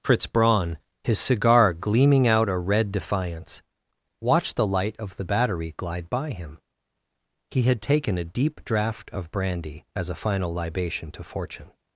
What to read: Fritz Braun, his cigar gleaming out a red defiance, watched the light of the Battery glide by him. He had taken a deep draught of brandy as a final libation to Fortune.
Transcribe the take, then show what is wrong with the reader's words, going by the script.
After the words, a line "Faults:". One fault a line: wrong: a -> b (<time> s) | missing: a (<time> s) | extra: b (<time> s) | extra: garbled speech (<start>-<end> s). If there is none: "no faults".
Fritz Braun, his cigar gleaming out a red defiance, watched the light of the Battery glide by him. He had taken a deep draught of brandy as a final libation to Fortune.
Faults:
no faults